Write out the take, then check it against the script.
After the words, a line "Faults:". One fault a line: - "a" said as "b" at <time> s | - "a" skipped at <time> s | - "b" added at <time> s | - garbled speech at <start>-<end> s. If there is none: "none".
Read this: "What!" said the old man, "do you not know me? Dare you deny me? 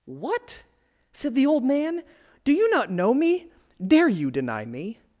"What!" said the old man, "do you not know me? Dare you deny me?
Faults:
none